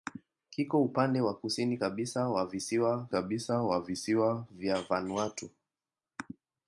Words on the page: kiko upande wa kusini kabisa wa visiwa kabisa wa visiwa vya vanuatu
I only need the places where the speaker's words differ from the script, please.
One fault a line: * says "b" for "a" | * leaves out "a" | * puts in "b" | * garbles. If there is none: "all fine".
all fine